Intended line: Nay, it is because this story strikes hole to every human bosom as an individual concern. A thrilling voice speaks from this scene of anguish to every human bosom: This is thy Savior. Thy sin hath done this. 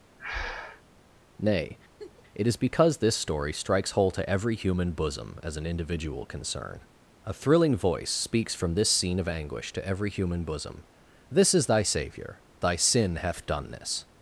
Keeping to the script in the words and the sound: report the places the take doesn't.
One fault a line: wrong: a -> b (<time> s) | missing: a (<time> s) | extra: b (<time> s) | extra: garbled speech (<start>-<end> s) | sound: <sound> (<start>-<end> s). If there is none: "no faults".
sound: breath (0.2-0.8 s)
sound: laugh (2.0-2.2 s)